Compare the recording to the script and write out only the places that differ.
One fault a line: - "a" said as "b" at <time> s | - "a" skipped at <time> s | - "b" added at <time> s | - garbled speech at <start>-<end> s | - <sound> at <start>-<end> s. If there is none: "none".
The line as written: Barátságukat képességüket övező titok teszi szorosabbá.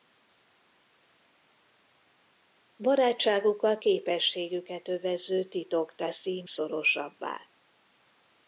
none